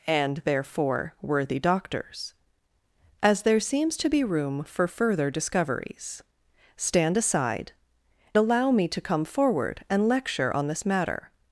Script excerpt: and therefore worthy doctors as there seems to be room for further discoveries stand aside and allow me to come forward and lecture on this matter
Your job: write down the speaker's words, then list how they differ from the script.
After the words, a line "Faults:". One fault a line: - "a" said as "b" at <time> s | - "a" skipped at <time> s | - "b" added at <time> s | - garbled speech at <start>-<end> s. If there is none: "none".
and therefore worthy doctors as there seems to be room for further discoveries stand aside allow me to come forward and lecture on this matter
Faults:
- "and" skipped at 7.7 s